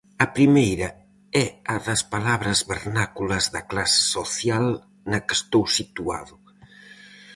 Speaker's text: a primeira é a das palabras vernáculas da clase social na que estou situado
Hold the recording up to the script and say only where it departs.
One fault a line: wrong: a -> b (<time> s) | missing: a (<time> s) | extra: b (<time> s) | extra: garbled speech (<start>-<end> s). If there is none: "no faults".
no faults